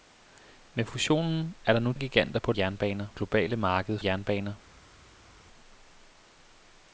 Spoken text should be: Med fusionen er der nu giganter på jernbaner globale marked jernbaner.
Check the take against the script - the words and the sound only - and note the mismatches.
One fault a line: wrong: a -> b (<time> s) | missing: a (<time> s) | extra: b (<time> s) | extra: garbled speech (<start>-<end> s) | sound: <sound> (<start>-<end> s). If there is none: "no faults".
no faults